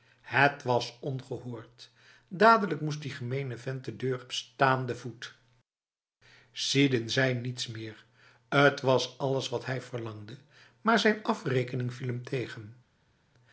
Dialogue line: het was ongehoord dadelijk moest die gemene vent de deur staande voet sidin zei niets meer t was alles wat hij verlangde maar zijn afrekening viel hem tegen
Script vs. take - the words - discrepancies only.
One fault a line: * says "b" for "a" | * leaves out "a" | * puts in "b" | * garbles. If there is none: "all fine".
all fine